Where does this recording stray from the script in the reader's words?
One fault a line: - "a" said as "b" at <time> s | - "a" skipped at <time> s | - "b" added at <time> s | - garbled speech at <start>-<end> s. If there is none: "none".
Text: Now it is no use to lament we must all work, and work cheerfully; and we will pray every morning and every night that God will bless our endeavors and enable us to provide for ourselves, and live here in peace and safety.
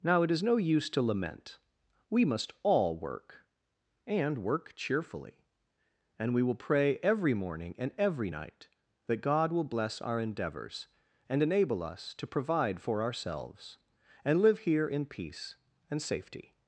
none